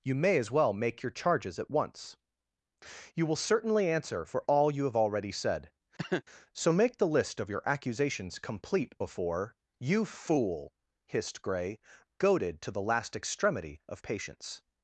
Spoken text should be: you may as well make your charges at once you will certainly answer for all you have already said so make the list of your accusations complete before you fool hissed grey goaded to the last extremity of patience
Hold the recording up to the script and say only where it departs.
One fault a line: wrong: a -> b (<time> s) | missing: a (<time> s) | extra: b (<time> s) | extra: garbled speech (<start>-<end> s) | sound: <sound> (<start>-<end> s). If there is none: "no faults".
sound: cough (6.0-6.2 s)